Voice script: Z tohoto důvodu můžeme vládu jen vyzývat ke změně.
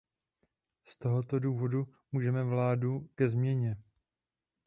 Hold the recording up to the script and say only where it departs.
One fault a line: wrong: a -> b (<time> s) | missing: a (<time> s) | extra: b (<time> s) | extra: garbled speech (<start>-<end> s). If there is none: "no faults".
missing: jen vyzývat (3.1 s)